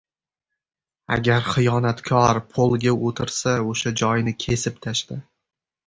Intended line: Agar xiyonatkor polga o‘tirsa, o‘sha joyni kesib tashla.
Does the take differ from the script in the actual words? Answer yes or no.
no